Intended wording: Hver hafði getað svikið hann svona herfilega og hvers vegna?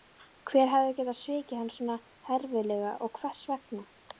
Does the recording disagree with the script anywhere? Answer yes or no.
no